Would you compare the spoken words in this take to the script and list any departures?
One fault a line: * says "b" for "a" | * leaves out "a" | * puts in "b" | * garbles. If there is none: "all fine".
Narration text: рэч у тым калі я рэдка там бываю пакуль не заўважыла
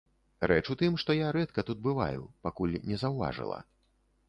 * says "што" for "калі"
* says "тут" for "там"